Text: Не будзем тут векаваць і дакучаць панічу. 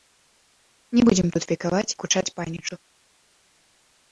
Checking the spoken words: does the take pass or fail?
fail